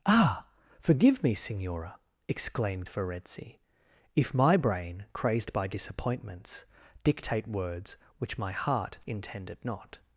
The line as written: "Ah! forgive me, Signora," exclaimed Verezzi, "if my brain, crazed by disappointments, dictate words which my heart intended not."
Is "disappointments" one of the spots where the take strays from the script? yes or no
no